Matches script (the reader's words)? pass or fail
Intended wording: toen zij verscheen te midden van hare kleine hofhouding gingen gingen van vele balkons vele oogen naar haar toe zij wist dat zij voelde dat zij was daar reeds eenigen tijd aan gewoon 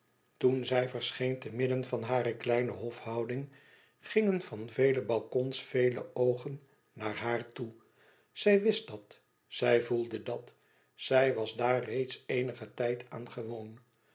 fail